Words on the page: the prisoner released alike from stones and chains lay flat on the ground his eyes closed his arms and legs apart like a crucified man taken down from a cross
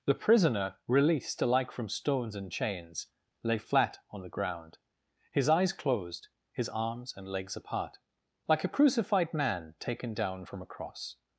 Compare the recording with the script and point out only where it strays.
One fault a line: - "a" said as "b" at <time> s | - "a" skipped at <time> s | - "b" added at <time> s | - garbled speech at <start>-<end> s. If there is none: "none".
none